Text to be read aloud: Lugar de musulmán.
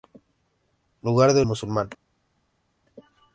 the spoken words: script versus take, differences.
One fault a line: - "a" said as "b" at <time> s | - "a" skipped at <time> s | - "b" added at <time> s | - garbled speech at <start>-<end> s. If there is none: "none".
none